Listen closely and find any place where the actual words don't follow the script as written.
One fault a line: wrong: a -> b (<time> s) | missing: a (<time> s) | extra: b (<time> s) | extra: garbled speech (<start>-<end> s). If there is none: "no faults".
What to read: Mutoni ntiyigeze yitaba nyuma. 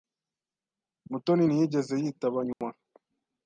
no faults